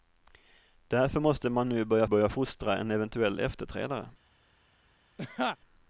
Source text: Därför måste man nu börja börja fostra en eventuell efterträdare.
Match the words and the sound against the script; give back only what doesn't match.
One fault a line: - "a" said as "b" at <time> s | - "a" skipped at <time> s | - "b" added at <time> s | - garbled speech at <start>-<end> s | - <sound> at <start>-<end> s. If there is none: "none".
- laugh at 5.2-5.6 s